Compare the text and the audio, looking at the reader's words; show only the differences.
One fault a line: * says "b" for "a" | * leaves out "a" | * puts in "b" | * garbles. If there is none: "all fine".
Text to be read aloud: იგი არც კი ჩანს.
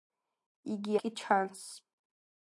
* leaves out "არც"